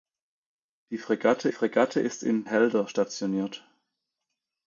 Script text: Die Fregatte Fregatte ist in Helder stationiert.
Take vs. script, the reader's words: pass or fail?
pass